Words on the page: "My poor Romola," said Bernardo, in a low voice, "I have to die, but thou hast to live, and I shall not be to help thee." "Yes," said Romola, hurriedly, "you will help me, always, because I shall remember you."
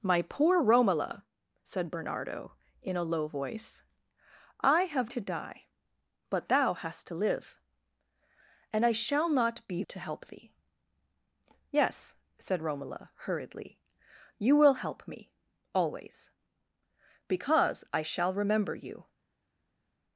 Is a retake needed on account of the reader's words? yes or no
no